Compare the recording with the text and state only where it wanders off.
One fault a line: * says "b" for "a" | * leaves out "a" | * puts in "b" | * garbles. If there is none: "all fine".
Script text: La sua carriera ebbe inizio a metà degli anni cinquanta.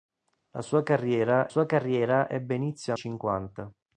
* puts in "sua carriera"
* leaves out "metà degli anni"